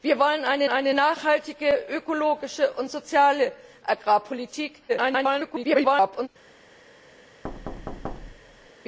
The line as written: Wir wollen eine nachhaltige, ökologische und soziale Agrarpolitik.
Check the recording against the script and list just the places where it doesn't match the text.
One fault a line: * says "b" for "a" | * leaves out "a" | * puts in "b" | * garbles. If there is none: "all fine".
* puts in "eine"
* garbles